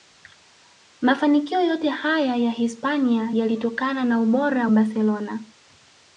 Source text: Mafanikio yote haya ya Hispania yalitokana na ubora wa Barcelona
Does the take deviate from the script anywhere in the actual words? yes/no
yes